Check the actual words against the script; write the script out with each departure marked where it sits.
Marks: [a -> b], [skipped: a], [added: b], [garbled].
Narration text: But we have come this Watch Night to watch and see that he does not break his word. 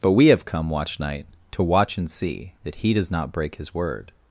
But we have come [skipped: this] Watch Night to watch and see that he does not break his word.